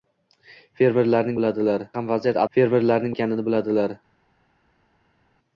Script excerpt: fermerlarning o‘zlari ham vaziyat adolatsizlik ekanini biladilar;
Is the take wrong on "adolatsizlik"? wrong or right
wrong